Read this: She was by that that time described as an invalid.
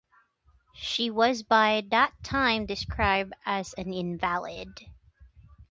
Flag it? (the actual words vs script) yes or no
yes